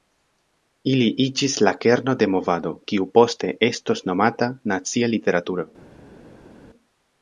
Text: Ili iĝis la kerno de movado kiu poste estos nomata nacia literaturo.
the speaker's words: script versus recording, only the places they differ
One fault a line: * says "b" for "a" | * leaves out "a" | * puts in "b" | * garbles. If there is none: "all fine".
all fine